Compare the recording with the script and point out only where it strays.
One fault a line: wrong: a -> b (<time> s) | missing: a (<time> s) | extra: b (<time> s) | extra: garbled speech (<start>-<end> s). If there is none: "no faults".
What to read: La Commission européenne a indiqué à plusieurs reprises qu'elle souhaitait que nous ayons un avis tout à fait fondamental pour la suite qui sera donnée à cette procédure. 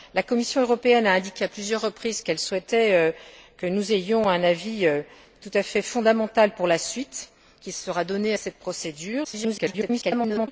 extra: garbled speech (9.2-10.5 s)